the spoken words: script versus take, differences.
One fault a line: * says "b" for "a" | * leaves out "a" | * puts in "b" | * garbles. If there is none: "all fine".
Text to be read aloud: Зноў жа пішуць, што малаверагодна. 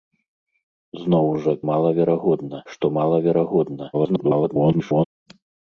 * says "малаверагодна" for "пішуць"
* garbles